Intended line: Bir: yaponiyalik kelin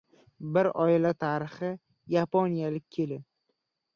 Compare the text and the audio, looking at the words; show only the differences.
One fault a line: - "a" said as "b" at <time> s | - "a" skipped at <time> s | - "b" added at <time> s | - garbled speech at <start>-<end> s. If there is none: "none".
- "oila tarixi" added at 0.8 s